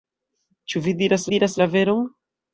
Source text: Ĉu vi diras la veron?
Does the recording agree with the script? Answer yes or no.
no